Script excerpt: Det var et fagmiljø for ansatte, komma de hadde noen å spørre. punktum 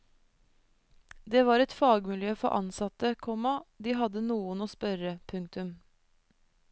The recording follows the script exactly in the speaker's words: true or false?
true